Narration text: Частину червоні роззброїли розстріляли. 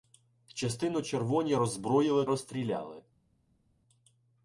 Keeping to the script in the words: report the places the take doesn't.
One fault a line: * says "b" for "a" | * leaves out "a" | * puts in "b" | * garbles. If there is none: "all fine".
all fine